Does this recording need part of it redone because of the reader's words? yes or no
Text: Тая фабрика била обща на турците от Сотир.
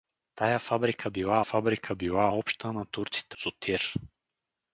yes